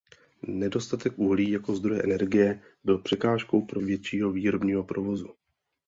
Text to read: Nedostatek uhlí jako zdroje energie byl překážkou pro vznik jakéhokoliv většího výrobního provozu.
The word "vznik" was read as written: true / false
false